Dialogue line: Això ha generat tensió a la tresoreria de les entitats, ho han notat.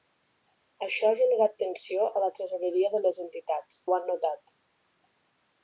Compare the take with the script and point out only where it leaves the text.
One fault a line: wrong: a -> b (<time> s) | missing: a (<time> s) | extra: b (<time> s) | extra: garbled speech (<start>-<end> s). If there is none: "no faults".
no faults